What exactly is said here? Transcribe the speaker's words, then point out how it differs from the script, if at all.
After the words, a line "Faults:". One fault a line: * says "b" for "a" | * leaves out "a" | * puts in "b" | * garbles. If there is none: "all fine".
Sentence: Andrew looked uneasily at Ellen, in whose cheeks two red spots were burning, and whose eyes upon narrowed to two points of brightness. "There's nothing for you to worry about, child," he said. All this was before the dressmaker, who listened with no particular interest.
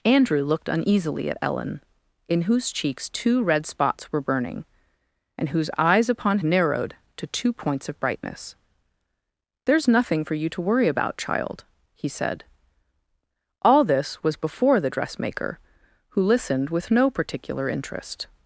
Andrew looked uneasily at Ellen, in whose cheeks two red spots were burning, and whose eyes upon narrowed to two points of brightness. "There's nothing for you to worry about, child," he said. All this was before the dressmaker, who listened with no particular interest.
Faults:
all fine